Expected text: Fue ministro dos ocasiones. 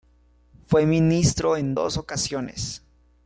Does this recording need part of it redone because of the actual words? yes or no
yes